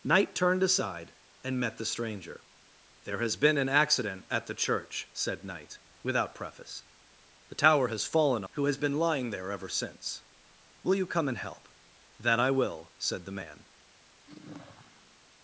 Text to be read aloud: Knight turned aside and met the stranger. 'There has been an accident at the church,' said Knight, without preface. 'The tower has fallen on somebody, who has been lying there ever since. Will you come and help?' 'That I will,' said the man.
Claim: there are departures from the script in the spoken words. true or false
true